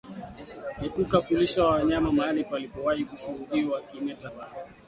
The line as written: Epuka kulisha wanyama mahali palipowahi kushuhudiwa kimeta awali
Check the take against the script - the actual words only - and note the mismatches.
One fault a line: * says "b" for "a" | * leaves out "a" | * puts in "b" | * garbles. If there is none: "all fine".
all fine